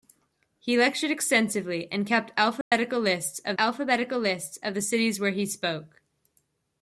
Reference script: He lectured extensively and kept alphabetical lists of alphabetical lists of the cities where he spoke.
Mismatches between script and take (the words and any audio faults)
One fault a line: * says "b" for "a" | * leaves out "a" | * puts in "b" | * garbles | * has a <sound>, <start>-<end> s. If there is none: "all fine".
* has a dropout, 2.6-2.7 s